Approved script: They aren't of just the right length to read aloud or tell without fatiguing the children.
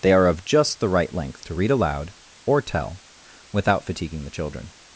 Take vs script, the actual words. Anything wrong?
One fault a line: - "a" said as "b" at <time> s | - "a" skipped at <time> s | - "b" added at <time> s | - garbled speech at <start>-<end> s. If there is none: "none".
- "aren't" said as "are" at 0.1 s